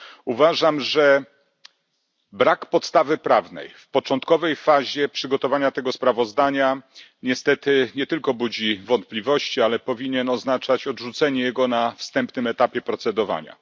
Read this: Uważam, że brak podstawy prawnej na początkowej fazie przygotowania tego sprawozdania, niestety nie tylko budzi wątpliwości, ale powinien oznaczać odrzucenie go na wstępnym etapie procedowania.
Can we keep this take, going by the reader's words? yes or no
no